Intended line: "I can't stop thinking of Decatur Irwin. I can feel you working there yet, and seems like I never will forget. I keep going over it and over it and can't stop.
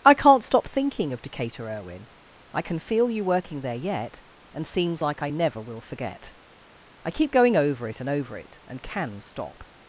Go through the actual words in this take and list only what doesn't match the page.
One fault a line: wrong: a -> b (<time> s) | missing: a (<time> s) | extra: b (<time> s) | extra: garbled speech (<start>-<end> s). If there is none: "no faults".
wrong: can't -> can (8.8 s)